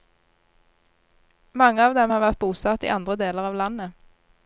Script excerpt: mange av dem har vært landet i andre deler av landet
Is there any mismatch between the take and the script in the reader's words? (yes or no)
yes